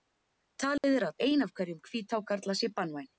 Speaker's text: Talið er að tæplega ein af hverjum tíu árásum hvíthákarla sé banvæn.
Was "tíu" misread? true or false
true